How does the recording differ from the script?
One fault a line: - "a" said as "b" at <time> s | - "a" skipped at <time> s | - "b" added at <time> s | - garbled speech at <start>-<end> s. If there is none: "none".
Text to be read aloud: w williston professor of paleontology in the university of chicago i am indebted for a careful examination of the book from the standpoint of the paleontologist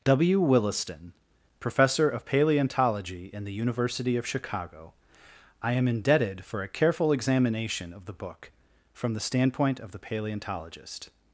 none